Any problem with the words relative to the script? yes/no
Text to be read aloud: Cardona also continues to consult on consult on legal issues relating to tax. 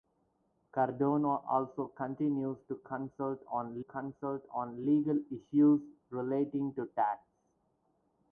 no